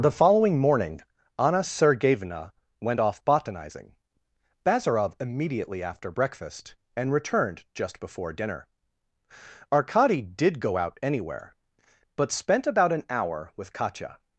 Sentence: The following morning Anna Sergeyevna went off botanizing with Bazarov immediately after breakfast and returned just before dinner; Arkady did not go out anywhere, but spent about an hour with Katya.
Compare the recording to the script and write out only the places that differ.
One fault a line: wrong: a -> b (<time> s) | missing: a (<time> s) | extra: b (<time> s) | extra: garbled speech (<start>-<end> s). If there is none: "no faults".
missing: with (4.0 s)
missing: not (10.6 s)